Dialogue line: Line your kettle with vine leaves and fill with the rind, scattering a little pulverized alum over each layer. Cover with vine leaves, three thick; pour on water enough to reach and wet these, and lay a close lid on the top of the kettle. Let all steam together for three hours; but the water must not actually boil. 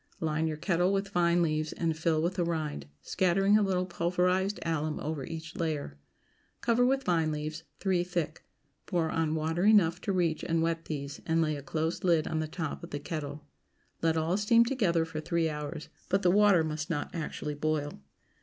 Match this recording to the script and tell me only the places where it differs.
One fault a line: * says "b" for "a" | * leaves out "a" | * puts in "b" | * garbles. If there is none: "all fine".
all fine